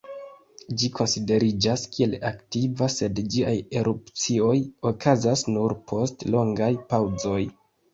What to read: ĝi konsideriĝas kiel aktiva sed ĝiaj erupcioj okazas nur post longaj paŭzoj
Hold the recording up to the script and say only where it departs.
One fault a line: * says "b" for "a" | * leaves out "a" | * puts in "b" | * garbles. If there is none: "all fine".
all fine